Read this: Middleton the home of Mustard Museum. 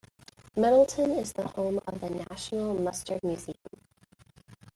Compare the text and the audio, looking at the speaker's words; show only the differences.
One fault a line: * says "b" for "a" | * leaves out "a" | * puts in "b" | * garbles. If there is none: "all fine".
* puts in "is"
* puts in "the National"